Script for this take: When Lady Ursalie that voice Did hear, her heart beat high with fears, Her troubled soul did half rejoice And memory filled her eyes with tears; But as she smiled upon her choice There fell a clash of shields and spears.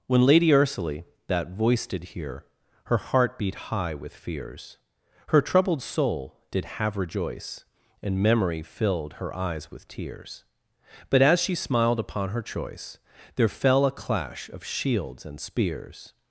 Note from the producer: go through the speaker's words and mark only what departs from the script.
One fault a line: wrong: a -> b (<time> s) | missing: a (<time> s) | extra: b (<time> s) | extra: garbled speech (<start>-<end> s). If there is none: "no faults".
wrong: half -> have (6.7 s)